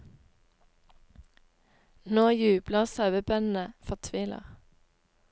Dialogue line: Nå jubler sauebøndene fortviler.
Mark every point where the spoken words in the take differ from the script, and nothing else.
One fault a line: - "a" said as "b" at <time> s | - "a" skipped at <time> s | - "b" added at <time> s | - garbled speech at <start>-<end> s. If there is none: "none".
none